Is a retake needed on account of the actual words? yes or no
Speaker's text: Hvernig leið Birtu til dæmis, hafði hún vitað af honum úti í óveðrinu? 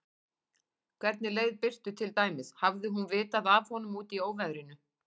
no